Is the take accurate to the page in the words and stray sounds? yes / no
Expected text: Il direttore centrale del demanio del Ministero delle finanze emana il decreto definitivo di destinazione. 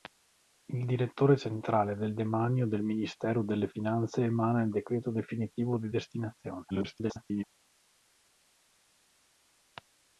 no